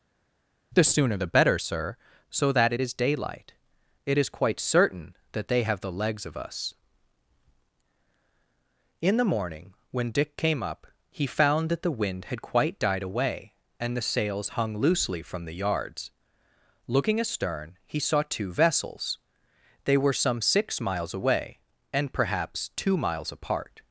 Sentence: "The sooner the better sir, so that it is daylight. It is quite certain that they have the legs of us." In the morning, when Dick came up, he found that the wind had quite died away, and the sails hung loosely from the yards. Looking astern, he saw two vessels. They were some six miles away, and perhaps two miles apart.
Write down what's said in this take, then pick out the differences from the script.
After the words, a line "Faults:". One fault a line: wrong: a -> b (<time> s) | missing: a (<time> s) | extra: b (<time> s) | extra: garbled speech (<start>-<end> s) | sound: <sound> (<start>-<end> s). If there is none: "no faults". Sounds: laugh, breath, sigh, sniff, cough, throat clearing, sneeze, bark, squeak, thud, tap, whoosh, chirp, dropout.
"The sooner the better sir, so that it is daylight. It is quite certain that they have the legs of us." In the morning, when Dick came up, he found that the wind had quite died away, and the sails hung loosely from the yards. Looking astern, he saw two vessels. They were some six miles away, and perhaps two miles apart.
Faults:
no faults